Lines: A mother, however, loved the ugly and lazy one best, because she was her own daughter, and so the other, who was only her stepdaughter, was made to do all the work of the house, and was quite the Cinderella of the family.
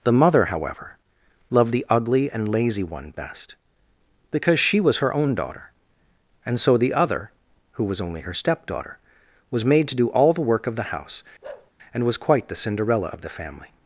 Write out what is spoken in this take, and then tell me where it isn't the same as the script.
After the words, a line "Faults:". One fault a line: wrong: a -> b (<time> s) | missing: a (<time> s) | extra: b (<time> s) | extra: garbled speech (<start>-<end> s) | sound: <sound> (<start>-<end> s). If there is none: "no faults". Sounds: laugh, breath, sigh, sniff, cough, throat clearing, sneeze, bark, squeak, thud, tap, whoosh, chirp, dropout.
The mother, however, loved the ugly and lazy one best, because she was her own daughter, and so the other, who was only her stepdaughter, was made to do all the work of the house, and was quite the Cinderella of the family.
Faults:
wrong: A -> The (0.0 s)
sound: bark (11.4-11.7 s)